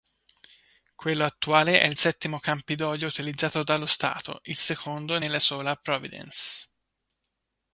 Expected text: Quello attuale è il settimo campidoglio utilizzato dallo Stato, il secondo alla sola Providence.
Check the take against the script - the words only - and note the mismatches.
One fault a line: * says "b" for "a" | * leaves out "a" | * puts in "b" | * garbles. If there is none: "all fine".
* says "nella" for "alla"